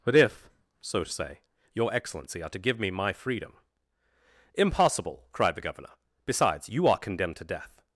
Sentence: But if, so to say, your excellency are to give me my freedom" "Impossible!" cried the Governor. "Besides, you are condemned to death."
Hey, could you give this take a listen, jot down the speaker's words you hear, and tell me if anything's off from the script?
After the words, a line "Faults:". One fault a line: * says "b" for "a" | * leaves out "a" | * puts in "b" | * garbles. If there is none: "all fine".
But if, so to say, your excellency are to give me my freedom" "Impossible!" cried the Governor. "Besides, you are condemned to death."
Faults:
all fine